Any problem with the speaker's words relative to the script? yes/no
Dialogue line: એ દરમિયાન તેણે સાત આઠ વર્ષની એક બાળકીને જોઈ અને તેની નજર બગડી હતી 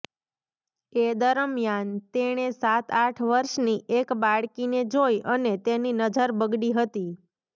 no